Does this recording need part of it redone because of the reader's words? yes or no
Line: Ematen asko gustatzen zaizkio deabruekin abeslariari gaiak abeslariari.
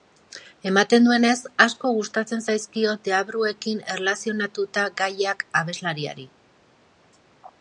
yes